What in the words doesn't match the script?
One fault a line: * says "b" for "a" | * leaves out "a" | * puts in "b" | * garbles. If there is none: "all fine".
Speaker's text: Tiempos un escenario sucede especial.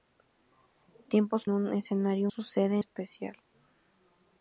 all fine